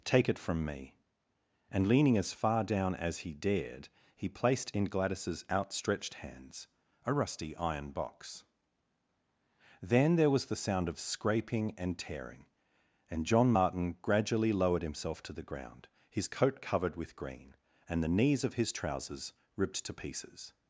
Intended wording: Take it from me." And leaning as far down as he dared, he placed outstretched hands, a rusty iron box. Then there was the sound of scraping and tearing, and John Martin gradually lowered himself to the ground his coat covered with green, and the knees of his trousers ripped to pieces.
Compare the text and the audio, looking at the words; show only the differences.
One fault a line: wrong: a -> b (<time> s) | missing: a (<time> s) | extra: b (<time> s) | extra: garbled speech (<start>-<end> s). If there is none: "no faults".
extra: in Gladys's (4.7 s)